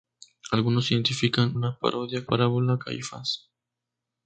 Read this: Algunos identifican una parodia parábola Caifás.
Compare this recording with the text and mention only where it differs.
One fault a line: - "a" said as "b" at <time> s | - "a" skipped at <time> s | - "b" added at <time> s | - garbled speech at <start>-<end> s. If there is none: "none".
none